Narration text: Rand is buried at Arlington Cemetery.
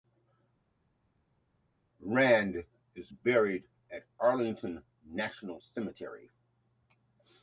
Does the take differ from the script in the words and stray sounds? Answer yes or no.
yes